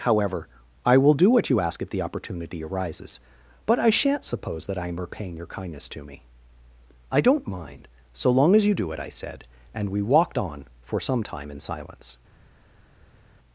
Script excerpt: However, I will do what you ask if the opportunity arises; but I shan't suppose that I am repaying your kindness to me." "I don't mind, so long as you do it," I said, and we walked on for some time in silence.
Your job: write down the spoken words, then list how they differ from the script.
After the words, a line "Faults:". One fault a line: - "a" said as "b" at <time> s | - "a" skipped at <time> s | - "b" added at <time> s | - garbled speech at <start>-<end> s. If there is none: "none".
However, I will do what you ask if the opportunity arises; but I shan't suppose that I am repaying your kindness to me." "I don't mind, so long as you do it," I said, and we walked on for some time in silence.
Faults:
none